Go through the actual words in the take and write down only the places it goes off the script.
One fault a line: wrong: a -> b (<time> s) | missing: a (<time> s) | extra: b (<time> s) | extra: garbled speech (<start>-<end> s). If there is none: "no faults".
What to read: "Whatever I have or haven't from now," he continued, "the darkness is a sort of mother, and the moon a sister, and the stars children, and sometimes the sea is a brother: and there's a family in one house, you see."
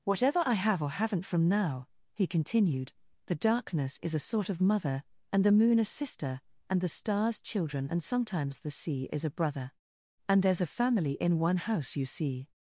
no faults